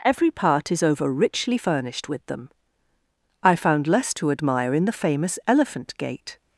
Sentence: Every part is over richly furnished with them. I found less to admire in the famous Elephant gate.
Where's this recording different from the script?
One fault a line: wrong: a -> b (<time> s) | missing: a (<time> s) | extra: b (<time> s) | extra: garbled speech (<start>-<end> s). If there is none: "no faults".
no faults